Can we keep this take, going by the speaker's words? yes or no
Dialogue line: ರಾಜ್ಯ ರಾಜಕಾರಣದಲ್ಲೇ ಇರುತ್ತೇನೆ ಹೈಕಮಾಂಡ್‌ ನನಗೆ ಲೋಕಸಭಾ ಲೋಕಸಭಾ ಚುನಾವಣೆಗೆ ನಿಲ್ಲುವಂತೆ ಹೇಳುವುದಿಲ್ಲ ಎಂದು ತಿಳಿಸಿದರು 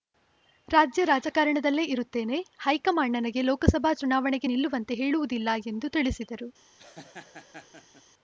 no